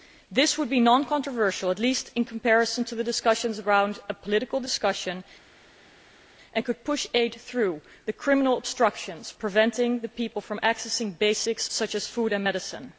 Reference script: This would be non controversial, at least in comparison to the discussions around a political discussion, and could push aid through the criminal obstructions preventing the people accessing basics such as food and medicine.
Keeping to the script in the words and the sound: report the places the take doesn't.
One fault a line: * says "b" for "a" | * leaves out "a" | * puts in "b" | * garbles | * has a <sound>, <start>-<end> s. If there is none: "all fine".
* puts in "from"